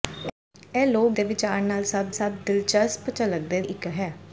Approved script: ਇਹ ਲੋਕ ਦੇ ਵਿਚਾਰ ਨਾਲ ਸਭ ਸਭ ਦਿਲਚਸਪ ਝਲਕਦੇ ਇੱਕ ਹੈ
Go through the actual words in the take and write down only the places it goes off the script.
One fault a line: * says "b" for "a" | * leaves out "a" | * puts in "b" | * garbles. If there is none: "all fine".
all fine